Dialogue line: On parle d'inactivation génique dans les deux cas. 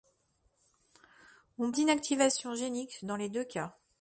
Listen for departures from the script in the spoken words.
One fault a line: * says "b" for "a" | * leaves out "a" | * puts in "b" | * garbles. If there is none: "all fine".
* leaves out "parle"